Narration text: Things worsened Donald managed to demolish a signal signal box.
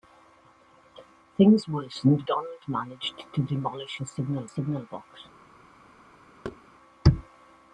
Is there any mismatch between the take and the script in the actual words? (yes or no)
no